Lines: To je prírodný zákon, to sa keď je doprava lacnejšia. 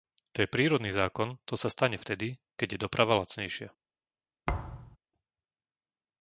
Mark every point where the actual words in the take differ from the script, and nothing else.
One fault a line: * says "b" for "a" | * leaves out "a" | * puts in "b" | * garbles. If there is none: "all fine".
* puts in "stane vtedy"